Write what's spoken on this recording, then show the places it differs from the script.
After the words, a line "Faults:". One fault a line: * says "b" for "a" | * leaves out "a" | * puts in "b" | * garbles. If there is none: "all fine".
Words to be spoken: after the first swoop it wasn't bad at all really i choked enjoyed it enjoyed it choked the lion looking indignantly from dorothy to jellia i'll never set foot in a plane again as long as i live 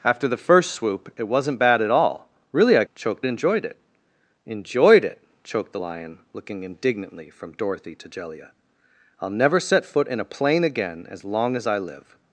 after the first swoop it wasn't bad at all really i choked enjoyed it enjoyed it choked the lion looking indignantly from dorothy to jellia i'll never set foot in a plane again as long as i live
Faults:
all fine